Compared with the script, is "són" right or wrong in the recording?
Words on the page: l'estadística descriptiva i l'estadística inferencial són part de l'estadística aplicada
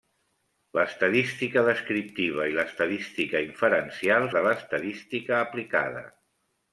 wrong